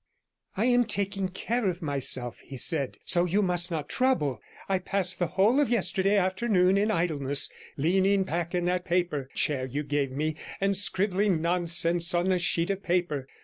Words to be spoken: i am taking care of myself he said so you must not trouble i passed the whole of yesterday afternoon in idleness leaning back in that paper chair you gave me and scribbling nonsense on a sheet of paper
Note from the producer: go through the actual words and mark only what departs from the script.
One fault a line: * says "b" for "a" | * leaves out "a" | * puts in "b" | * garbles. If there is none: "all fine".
all fine